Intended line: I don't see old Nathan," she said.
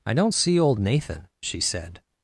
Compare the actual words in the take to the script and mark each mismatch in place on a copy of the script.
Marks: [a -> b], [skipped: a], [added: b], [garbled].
I don't see old Nathan," she said.